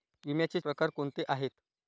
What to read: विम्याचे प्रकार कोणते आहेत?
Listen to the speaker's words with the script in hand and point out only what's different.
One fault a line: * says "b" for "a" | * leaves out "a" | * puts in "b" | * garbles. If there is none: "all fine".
all fine